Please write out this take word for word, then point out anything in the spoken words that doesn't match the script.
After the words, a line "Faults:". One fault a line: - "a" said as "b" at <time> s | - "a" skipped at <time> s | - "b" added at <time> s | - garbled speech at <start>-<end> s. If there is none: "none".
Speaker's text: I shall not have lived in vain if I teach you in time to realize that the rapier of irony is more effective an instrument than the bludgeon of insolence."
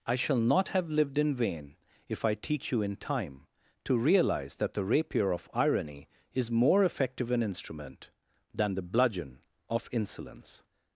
I shall not have lived in vain if I teach you in time to realize that the rapier of irony is more effective an instrument than the bludgeon of insolence."
Faults:
none